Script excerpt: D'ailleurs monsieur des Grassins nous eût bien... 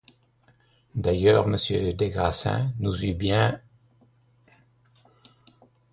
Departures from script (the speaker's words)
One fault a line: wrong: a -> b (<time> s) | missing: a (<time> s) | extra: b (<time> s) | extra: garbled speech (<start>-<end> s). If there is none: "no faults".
no faults